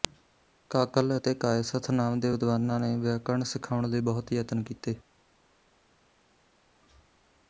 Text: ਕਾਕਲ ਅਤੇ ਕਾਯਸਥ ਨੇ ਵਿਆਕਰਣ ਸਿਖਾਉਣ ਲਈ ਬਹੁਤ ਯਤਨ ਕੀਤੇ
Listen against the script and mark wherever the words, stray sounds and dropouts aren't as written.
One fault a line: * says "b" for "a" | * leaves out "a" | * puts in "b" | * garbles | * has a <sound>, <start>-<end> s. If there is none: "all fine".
* puts in "ਨਾਮ ਦੇ ਵਿਦਵਾਨਾਂ"